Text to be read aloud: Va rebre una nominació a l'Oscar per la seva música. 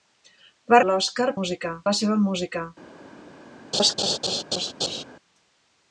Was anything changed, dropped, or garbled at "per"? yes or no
yes